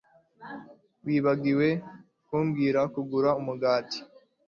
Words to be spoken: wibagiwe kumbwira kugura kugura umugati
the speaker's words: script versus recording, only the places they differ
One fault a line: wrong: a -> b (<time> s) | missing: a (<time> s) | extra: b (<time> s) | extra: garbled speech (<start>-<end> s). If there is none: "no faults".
missing: kugura (3.3 s)